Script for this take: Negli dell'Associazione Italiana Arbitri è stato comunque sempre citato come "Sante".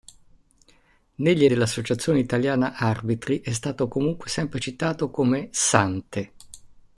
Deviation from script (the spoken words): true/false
false